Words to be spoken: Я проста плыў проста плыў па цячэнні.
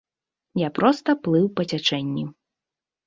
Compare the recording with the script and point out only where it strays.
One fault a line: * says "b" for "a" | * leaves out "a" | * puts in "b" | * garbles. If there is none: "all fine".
* leaves out "проста плыў"